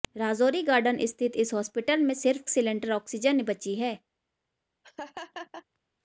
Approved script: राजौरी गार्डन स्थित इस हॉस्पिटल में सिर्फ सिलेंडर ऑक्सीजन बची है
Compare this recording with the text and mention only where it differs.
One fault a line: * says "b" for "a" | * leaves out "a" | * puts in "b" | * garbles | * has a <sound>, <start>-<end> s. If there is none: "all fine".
* has a laugh, 4.8-5.6 s